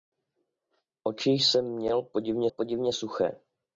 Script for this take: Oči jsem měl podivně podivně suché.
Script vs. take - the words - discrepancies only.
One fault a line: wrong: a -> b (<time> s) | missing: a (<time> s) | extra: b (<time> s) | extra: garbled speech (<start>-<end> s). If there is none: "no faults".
no faults